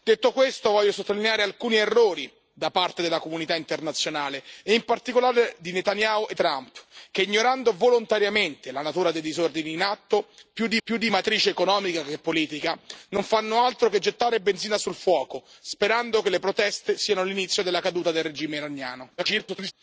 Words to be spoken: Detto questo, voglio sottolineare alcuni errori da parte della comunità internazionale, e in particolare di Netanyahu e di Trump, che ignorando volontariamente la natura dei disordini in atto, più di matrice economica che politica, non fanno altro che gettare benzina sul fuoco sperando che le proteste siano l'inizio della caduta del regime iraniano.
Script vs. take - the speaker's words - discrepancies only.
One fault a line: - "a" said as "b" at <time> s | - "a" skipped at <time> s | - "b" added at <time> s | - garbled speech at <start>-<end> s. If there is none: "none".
- "di" skipped at 6.3 s
- "più di" added at 10.8 s
- garbled speech at 19.2-19.7 s